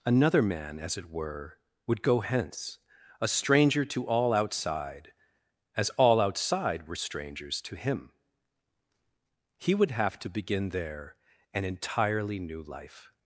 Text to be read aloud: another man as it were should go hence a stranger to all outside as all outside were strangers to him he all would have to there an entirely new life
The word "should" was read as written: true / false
false